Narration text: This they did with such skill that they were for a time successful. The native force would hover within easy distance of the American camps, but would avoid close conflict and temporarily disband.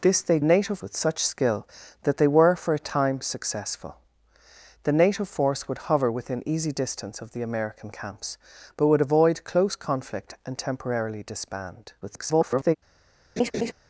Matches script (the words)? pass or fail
fail